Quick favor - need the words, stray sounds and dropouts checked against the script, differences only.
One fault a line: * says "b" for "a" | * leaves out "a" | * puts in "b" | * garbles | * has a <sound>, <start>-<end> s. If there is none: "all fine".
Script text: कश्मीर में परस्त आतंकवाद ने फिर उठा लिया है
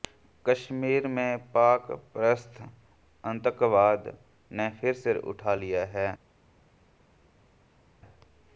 * puts in "पाक"
* puts in "सिर"